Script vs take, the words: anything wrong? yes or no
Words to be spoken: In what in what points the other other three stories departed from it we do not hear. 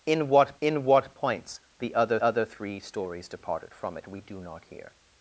no